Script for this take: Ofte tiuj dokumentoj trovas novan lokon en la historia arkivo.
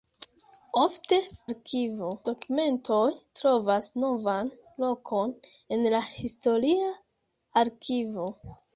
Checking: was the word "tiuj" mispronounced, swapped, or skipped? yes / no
yes